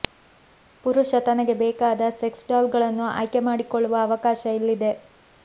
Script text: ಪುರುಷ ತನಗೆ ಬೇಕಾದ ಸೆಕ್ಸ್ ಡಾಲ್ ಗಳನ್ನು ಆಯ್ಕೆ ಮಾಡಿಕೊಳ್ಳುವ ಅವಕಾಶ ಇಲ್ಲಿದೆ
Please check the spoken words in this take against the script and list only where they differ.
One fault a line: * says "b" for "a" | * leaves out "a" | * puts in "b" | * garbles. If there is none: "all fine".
all fine